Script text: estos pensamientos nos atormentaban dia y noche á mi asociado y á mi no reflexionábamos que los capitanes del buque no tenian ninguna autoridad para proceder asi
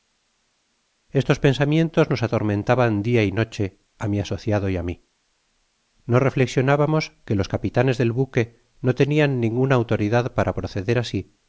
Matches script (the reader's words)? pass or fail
pass